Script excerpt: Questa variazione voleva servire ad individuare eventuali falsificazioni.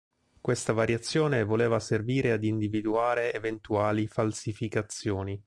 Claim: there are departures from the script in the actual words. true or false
false